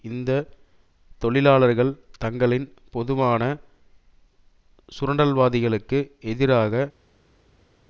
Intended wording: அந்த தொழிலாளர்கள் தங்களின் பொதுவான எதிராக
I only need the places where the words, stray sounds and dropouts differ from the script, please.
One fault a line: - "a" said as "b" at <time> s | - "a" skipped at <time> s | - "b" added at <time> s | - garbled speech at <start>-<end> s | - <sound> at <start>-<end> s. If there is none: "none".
- "அந்த" said as "இந்த" at 0.0 s
- "சுரண்டல்வாதிகளுக்கு" added at 4.9 s